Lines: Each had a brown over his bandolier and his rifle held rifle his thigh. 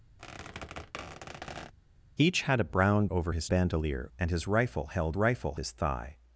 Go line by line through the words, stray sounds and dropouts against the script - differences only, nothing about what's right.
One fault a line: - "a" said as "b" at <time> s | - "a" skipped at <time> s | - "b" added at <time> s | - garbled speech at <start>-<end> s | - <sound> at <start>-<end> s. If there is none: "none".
- squeak at 0.2-1.7 s